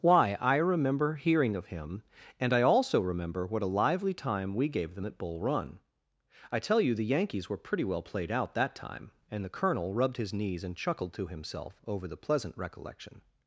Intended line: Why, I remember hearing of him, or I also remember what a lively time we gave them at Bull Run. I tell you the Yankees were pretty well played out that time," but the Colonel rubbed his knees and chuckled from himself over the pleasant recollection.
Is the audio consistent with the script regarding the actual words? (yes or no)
no